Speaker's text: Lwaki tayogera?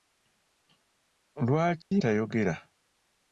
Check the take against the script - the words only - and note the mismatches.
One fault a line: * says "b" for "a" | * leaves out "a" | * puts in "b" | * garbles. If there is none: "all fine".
all fine